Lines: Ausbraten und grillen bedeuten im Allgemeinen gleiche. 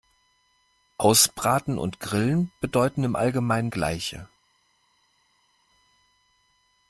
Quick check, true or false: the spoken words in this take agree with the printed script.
true